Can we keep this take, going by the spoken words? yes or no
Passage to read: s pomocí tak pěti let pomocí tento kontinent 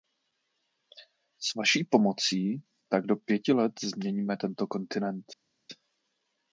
no